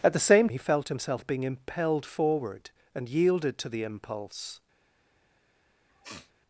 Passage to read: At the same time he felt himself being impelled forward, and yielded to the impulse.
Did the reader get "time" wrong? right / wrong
wrong